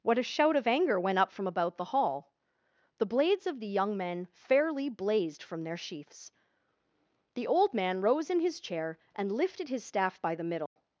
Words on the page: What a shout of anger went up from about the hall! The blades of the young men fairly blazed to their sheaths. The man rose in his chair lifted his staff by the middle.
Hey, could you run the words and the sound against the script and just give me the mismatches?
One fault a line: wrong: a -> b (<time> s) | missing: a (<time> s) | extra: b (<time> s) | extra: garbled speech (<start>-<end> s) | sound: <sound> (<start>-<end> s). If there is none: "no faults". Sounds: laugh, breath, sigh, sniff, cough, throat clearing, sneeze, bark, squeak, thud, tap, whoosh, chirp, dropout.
wrong: to -> from (5.4 s)
extra: old (7.5 s)
extra: and (9.2 s)
sound: dropout (10.7-10.8 s)